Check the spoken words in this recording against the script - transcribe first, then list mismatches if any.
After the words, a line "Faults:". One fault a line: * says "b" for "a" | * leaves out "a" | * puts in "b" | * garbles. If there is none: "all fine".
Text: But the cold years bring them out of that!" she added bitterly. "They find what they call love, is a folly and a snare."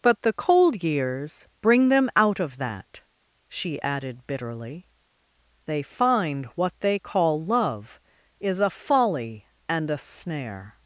But the cold years bring them out of that!" she added bitterly. "They find what they call love, is a folly and a snare."
Faults:
all fine